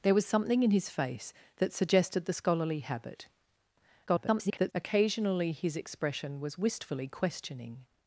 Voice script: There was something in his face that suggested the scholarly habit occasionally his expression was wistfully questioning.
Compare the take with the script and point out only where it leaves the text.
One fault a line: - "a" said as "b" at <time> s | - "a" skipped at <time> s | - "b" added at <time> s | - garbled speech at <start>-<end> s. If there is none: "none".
- garbled speech at 4.1-4.7 s